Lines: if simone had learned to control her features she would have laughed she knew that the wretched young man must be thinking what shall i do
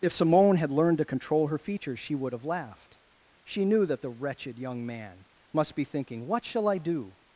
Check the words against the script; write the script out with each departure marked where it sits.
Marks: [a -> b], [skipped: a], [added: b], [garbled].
if simone had learned to control her features she would have laughed she knew that the wretched young man must be thinking what shall i do